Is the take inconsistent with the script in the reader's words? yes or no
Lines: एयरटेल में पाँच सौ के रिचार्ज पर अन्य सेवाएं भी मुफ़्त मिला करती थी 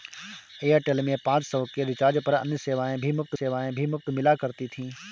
yes